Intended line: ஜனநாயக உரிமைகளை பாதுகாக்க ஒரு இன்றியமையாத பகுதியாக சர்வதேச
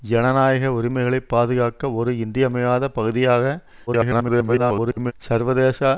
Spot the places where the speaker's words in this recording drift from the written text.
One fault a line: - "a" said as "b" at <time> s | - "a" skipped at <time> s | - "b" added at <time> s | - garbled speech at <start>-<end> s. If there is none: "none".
- garbled speech at 3.9-5.1 s